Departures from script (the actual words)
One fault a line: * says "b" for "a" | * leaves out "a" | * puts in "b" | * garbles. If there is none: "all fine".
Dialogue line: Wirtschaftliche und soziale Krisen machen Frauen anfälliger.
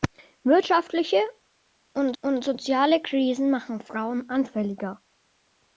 * puts in "und"